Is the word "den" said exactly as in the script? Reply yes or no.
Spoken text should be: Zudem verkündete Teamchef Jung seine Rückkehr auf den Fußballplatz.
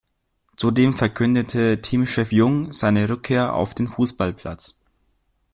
yes